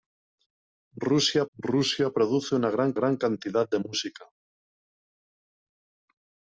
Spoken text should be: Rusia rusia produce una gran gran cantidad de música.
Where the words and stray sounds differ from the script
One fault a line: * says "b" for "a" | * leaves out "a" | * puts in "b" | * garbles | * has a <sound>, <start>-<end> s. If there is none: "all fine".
all fine